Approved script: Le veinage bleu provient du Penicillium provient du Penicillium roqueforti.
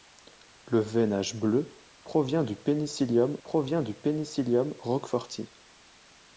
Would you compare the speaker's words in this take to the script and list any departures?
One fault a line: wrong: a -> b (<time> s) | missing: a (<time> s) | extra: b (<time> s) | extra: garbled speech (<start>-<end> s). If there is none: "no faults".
no faults